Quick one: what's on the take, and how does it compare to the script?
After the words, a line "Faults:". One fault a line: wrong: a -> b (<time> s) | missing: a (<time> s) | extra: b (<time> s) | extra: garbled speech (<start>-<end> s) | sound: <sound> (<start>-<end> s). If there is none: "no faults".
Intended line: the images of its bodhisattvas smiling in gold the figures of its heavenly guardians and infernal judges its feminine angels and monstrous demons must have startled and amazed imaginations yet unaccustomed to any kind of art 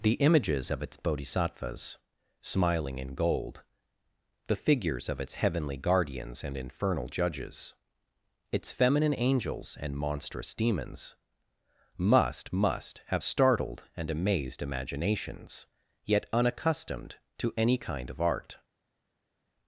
the images of its bodhisattvas smiling in gold the figures of its heavenly guardians and infernal judges its feminine angels and monstrous demons must must have startled and amazed imaginations yet unaccustomed to any kind of art
Faults:
extra: must (12.5 s)